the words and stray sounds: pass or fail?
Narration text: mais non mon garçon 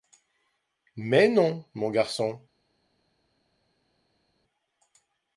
pass